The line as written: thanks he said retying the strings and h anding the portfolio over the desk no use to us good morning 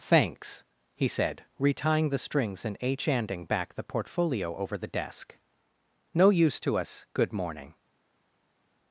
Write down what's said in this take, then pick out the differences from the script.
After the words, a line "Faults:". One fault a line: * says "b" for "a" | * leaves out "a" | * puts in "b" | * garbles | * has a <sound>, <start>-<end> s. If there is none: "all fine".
thanks he said retying the strings and h anding back the portfolio over the desk no use to us good morning
Faults:
* puts in "back"